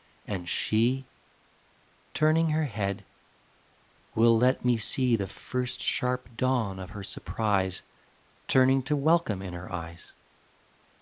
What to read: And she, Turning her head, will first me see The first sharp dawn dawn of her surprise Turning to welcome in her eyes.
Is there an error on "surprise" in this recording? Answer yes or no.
no